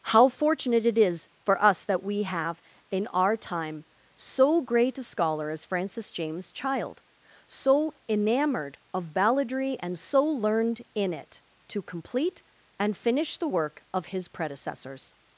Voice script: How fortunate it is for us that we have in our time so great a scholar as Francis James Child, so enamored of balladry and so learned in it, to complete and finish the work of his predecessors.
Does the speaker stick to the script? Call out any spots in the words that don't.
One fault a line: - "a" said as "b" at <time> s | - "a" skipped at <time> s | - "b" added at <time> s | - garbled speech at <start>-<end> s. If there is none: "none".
none